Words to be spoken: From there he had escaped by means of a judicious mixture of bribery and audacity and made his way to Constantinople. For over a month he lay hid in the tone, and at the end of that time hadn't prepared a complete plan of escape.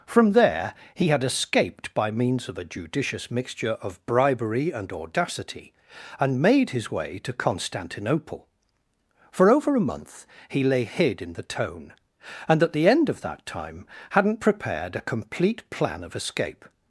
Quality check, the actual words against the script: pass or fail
pass